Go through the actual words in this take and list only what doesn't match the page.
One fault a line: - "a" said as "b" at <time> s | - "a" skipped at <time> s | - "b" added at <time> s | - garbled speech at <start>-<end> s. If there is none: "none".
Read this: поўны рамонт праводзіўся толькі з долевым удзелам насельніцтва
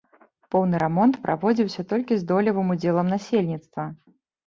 none